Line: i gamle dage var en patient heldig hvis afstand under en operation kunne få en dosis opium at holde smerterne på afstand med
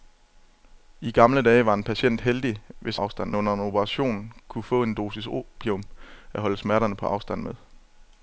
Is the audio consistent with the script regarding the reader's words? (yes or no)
yes